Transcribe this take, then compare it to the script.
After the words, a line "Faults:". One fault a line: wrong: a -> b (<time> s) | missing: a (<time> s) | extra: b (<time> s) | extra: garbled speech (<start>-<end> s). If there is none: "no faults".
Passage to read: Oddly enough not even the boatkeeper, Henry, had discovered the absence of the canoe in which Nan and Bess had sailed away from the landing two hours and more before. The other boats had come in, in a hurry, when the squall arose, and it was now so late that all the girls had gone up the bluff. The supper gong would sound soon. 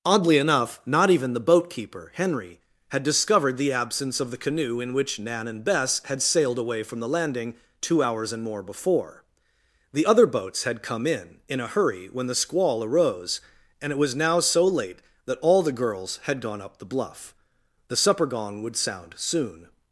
Oddly enough not even the boatkeeper, Henry, had discovered the absence of the canoe in which Nan and Bess had sailed away from the landing two hours and more before. The other boats had come in, in a hurry, when the squall arose, and it was now so late that all the girls had gone up the bluff. The supper gong would sound soon.
Faults:
no faults